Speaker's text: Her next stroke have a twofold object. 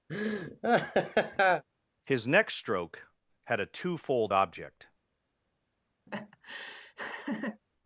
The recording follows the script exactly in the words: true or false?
false